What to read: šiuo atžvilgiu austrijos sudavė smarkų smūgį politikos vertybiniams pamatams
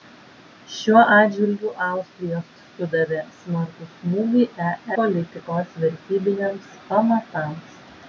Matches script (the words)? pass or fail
pass